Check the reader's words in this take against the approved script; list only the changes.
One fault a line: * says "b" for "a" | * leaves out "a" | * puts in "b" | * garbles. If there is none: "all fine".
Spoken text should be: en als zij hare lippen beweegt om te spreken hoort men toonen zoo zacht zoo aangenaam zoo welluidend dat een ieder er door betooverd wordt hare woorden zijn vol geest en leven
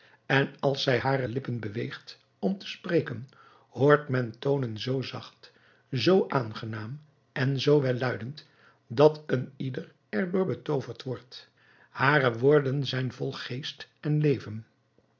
* puts in "en"